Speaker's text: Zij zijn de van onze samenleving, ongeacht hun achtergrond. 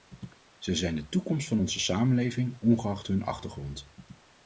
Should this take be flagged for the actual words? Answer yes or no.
yes